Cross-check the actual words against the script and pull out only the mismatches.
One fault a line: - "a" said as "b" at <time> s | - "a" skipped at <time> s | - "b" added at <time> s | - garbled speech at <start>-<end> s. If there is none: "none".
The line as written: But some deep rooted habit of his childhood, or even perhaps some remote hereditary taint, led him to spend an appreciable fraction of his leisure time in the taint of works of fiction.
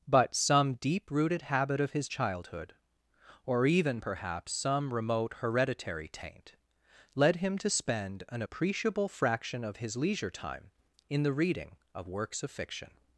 - "taint" said as "reading" at 11.3 s